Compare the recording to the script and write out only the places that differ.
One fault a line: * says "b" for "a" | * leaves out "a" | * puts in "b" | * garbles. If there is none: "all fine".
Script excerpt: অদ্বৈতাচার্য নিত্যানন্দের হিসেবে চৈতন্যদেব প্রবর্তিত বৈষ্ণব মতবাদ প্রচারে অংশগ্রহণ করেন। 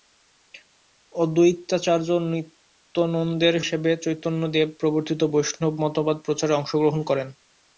all fine